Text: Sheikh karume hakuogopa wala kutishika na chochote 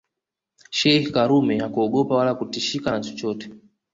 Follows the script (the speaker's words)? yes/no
yes